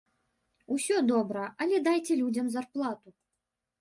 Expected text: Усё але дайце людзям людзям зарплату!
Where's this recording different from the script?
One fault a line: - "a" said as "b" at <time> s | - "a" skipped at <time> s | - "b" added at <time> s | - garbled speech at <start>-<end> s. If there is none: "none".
- "добра" added at 1.1 s
- "людзям" skipped at 2.5 s